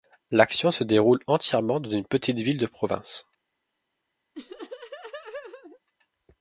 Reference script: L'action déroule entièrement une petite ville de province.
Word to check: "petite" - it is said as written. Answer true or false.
true